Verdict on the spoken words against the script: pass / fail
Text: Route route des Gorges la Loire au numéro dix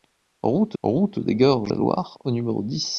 pass